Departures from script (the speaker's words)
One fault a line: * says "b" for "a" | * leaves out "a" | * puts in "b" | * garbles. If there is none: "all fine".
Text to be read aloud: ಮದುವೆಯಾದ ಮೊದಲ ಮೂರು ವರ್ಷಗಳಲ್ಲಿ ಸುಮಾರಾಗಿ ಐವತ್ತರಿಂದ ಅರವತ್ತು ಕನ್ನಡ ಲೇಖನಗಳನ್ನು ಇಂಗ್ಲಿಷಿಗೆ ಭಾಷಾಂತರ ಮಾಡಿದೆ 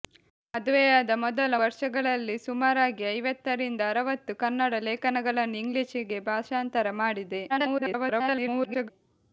* leaves out "ಮೂರು"
* garbles